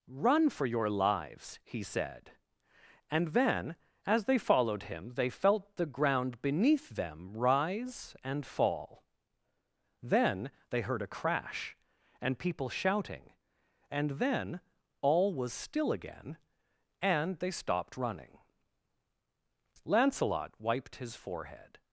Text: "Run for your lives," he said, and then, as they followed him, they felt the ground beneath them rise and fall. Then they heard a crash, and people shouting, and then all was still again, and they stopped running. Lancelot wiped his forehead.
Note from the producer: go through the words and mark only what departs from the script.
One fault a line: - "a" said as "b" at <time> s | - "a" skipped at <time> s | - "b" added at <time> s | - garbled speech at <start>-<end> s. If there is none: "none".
none